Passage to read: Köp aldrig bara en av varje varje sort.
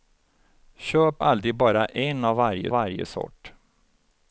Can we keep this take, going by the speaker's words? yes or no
yes